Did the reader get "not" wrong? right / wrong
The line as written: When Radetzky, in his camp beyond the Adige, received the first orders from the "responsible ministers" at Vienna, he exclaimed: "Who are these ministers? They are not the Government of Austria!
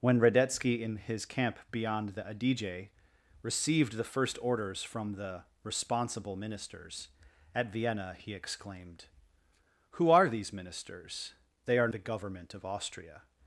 wrong